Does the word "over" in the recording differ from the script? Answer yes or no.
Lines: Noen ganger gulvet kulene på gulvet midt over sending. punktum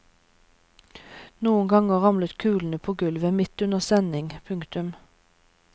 yes